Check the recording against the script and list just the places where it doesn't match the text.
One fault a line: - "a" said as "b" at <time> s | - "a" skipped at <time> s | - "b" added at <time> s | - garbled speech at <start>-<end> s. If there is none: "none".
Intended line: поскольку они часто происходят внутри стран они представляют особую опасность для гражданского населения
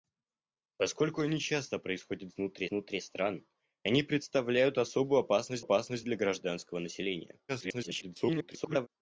- "внутри" added at 2.7 s
- "опасность" added at 5.6 s
- garbled speech at 7.5-8.9 s